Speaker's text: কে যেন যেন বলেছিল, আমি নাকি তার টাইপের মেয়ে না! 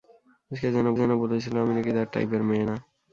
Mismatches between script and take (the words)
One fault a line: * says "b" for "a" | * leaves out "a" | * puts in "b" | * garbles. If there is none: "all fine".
all fine